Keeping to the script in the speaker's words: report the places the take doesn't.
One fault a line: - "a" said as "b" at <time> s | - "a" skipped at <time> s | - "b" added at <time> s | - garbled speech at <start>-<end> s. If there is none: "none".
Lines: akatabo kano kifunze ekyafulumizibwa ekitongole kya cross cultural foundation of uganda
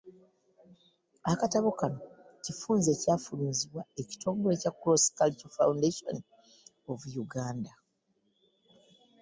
none